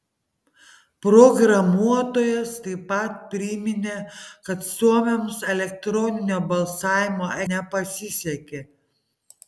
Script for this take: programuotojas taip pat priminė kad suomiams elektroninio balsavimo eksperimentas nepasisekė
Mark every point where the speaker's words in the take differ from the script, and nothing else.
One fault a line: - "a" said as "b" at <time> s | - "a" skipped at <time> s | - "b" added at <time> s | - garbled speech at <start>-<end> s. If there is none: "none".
- "eksperimentas" skipped at 7.3 s